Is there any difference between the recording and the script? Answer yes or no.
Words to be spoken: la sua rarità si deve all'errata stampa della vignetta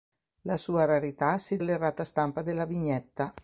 yes